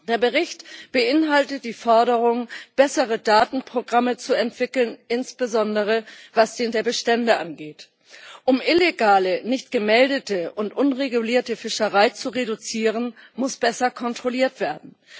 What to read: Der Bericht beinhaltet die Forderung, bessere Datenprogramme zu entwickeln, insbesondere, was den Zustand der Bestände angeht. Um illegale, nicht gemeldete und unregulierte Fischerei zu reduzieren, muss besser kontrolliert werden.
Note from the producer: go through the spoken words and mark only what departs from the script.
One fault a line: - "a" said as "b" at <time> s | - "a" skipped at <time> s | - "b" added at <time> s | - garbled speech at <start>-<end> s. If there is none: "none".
- "Zustand" skipped at 6.7 s